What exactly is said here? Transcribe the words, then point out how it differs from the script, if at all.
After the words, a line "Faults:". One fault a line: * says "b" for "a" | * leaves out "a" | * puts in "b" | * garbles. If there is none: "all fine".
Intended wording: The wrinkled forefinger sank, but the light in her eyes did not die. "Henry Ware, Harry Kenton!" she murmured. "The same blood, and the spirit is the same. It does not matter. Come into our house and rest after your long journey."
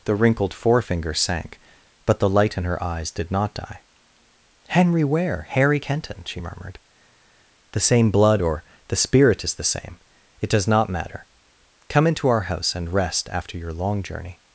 The wrinkled forefinger sank, but the light in her eyes did not die. "Henry Ware, Harry Kenton!" she murmured. "The same blood, or the spirit is the same. It does not matter. Come into our house and rest after your long journey."
Faults:
* says "or" for "and"